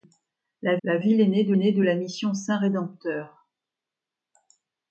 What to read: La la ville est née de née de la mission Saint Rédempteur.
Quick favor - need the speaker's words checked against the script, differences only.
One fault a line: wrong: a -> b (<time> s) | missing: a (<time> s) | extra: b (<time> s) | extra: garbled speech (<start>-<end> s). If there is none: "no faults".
no faults